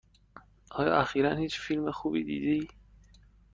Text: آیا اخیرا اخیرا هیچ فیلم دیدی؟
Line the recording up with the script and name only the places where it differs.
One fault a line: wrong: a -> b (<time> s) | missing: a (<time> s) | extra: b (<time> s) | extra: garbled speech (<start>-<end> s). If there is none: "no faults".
missing: اخیرا (1.4 s)
extra: خوبی (1.9 s)